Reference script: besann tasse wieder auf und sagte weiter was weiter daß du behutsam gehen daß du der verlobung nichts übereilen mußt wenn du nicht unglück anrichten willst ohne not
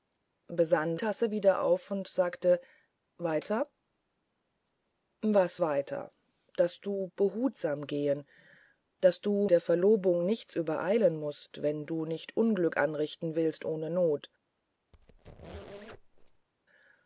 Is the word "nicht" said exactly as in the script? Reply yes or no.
yes